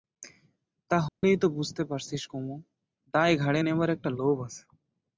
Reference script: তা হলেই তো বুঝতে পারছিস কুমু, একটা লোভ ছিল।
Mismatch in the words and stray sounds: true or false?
true